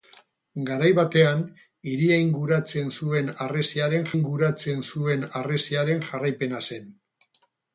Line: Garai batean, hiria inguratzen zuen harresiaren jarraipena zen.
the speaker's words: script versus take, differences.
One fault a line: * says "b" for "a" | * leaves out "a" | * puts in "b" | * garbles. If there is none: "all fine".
* puts in "inguratzen zuen harresiaren"